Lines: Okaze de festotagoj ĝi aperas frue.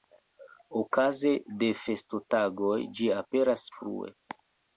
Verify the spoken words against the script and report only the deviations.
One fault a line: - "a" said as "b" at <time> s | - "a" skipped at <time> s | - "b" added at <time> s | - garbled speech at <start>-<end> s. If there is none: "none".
none